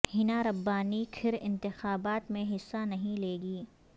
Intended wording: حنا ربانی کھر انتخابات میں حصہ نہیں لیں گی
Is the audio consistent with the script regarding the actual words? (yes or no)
yes